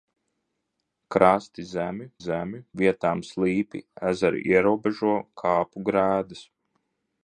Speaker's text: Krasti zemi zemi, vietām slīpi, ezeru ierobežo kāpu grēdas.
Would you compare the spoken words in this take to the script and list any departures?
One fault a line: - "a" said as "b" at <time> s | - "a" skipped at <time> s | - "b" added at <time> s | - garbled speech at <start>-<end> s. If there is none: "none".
none